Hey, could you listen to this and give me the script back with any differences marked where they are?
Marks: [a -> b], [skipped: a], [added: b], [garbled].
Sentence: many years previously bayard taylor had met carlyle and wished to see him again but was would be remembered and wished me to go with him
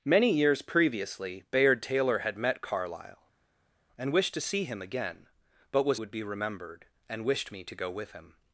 many years previously bayard taylor had met carlyle and wished to see him again but was would be remembered and wished me to go with him